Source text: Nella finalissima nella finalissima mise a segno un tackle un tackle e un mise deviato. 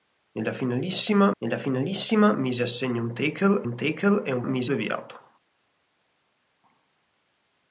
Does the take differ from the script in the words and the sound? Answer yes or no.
no